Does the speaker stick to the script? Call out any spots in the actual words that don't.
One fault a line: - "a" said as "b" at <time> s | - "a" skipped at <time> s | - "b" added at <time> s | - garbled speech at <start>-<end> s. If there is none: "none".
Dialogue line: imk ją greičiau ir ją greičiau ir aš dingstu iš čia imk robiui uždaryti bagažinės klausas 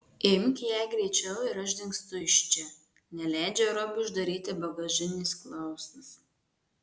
- "ją greičiau ir" skipped at 1.6 s
- "imk" said as "neleidžia" at 3.2 s